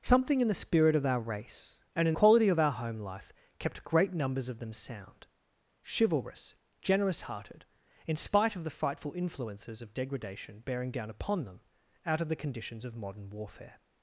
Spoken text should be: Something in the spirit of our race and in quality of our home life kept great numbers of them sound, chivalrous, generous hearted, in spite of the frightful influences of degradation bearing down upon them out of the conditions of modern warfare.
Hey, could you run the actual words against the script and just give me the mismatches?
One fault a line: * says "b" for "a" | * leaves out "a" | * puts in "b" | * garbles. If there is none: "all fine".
all fine